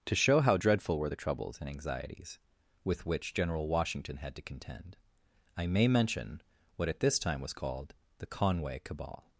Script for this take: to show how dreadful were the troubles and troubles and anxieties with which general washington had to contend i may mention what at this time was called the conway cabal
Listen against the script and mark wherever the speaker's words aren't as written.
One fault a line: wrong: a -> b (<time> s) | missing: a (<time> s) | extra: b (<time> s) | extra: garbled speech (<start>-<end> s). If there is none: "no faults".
missing: troubles and (1.7 s)